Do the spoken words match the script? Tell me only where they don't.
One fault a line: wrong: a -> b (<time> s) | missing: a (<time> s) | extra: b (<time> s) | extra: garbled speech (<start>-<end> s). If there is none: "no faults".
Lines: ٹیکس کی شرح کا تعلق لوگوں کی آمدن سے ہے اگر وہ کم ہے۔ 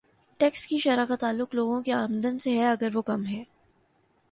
no faults